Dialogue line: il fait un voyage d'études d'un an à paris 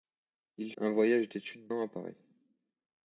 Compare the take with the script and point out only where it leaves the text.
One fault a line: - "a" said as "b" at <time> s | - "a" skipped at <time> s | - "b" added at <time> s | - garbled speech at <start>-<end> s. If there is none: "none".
- "fait" skipped at 0.7 s
- "d'un" skipped at 1.7 s